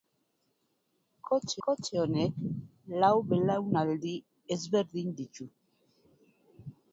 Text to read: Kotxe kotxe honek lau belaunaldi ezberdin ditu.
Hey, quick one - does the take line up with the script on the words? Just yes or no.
yes